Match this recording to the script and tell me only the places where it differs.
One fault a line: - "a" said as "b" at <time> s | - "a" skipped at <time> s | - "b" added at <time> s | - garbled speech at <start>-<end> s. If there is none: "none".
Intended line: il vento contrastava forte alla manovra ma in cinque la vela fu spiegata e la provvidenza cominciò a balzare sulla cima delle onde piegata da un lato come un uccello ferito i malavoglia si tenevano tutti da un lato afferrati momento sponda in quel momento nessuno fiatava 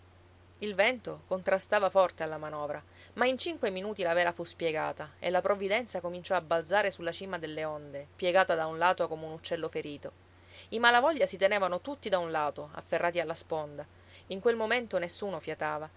- "minuti" added at 3.7 s
- "momento" said as "alla" at 13.2 s